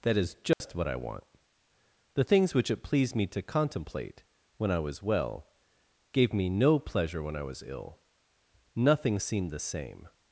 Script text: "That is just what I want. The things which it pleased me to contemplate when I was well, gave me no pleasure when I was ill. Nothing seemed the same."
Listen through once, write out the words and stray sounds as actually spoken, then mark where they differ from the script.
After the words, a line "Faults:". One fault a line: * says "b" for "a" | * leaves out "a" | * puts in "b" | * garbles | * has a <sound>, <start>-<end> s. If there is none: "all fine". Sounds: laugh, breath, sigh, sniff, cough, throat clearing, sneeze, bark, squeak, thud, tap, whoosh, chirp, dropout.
"That is just what I want. The things which it pleased me to contemplate when I was well, gave me no pleasure when I was ill. Nothing seemed the same."
Faults:
* has a dropout, 0.5-0.6 s